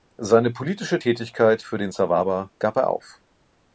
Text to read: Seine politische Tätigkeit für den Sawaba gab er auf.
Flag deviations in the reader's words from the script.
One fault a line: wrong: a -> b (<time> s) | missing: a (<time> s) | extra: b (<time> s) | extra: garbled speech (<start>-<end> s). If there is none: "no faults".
no faults